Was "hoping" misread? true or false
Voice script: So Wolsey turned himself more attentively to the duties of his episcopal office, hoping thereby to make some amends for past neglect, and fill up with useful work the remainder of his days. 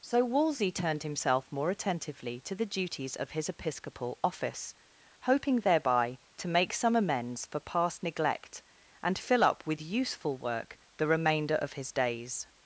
false